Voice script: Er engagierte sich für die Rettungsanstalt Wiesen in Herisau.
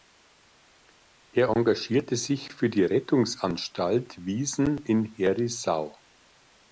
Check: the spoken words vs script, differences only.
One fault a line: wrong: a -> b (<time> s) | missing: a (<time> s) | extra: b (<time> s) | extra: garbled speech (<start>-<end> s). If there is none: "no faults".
no faults